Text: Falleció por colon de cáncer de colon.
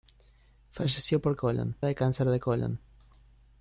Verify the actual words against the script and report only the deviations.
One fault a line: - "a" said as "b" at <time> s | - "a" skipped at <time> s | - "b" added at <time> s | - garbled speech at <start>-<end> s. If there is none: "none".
none